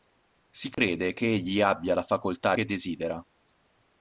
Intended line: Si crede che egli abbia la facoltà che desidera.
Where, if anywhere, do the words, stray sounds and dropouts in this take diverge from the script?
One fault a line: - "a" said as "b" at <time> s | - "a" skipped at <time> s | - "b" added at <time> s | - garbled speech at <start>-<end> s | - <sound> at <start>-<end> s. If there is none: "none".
- dropout at 0.7-0.8 s